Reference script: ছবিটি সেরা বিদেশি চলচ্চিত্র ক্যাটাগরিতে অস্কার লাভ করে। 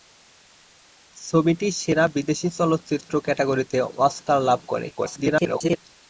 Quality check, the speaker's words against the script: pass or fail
fail